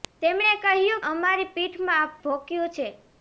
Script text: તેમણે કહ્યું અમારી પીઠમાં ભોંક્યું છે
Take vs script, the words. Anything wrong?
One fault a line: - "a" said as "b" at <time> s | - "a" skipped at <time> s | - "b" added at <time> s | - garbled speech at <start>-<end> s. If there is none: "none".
none